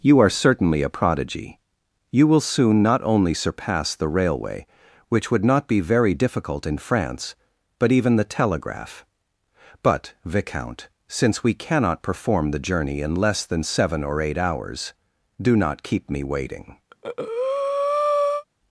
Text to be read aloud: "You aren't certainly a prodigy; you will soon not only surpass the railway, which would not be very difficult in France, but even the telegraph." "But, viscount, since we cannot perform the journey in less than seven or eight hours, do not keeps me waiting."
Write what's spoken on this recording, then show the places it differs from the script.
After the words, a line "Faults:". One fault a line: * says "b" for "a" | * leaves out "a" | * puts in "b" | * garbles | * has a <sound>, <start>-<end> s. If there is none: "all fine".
"You are certainly a prodigy; you will soon not only surpass the railway, which would not be very difficult in France, but even the telegraph." "But, viscount, since we cannot perform the journey in less than seven or eight hours, do not keep me waiting."
Faults:
* says "are" for "aren't"
* says "keep" for "keeps"
* has a breath, 16.9-18.4 s